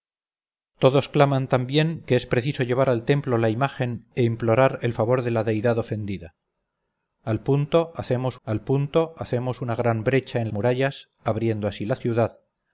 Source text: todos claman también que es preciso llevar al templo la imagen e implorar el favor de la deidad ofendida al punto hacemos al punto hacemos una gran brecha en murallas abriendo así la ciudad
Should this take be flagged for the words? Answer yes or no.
no